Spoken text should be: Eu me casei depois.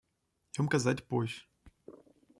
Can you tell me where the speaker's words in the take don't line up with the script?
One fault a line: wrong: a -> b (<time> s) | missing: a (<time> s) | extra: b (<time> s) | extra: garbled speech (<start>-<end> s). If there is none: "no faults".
no faults